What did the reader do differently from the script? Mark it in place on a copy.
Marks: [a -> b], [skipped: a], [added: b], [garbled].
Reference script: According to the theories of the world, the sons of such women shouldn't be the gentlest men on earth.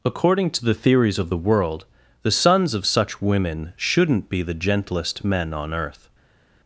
According to the theories of the world, the sons of such women shouldn't be the gentlest men on earth.